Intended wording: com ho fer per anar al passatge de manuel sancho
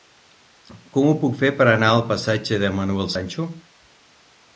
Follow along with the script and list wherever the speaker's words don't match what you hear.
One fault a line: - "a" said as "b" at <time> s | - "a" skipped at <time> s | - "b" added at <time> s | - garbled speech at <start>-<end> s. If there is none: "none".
- "puc" added at 1.2 s